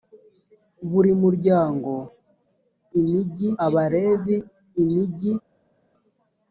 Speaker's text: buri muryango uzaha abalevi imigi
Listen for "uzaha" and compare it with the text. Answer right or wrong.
wrong